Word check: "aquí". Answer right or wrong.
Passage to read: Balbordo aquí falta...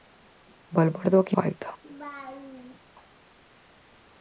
right